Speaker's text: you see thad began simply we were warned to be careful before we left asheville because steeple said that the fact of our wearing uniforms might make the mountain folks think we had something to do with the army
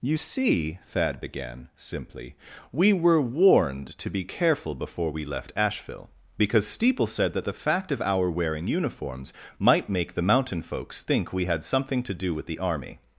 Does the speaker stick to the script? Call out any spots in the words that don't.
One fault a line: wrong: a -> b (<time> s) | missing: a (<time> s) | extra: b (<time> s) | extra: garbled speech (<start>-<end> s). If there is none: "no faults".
no faults